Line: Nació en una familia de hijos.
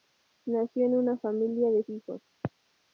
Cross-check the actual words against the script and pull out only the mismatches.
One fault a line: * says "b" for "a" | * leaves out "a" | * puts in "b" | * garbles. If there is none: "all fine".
all fine